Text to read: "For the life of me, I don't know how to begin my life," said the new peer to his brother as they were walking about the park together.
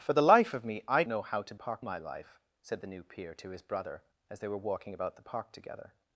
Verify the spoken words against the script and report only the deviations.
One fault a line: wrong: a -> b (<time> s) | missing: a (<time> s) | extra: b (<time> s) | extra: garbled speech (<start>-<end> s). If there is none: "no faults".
missing: don't (1.0 s)
wrong: begin -> park (1.6 s)